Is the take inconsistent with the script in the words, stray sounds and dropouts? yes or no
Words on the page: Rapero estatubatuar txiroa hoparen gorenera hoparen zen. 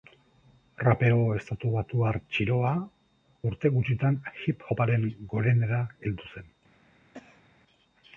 yes